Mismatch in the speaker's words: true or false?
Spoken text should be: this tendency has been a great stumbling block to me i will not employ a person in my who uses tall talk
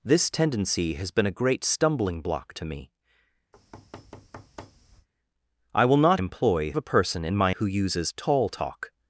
false